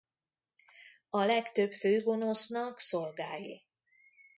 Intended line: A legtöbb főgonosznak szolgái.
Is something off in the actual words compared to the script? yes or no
no